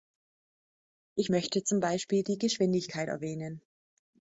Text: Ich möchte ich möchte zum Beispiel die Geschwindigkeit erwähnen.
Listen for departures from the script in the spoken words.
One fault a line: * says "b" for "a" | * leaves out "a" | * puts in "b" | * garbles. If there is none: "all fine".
* leaves out "ich möchte"